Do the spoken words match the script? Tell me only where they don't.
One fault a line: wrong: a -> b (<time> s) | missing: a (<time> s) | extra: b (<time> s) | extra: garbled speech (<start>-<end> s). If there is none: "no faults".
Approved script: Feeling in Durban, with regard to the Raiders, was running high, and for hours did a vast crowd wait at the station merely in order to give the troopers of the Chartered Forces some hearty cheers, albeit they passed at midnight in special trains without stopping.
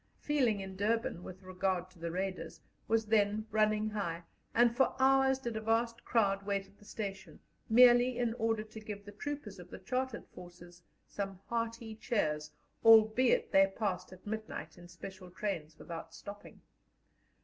extra: then (3.0 s)